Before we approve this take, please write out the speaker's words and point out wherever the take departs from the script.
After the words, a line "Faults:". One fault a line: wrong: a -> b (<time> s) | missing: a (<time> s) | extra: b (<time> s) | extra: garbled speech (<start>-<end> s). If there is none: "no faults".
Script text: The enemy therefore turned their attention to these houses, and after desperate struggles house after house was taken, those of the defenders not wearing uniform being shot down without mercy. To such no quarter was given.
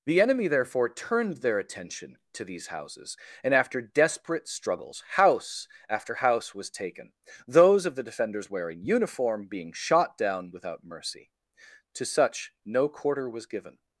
The enemy therefore turned their attention to these houses, and after desperate struggles house after house was taken, those of the defenders wearing uniform being shot down without mercy. To such no quarter was given.
Faults:
missing: not (8.5 s)